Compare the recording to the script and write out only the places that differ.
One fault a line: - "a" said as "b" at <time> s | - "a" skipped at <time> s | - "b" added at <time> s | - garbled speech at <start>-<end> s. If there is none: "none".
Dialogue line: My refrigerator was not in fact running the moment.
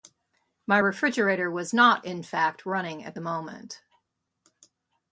- "at" added at 3.0 s